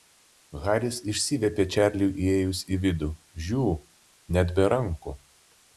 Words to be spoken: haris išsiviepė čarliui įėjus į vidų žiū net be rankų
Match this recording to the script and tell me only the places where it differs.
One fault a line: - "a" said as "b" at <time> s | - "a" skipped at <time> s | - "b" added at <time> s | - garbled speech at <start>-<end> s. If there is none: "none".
none